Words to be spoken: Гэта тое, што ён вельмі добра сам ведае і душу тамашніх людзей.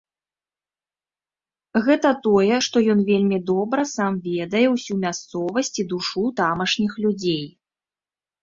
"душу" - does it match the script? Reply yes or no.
yes